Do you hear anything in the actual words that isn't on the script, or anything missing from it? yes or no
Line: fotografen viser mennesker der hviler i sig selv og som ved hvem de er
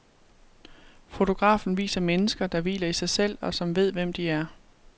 no